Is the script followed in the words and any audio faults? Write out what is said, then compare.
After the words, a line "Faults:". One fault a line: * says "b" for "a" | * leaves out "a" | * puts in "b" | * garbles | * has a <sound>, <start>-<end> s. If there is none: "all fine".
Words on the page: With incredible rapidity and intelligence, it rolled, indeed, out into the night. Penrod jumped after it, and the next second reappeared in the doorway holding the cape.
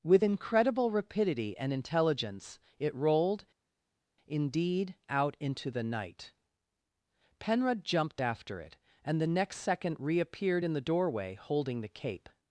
With incredible rapidity and intelligence, it rolled, indeed, out into the night. Penrod jumped after it, and the next second reappeared in the doorway holding the cape.
Faults:
all fine